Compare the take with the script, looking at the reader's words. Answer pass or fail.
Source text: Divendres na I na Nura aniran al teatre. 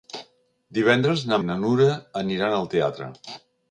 pass